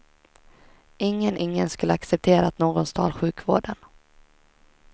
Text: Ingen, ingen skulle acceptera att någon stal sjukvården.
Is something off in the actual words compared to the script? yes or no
no